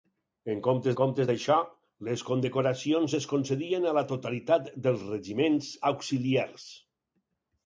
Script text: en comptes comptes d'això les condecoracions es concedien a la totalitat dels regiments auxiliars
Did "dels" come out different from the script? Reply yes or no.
no